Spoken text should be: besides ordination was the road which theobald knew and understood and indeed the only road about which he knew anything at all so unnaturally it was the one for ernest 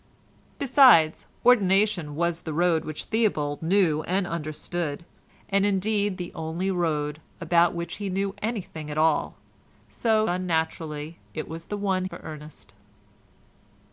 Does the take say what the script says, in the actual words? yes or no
yes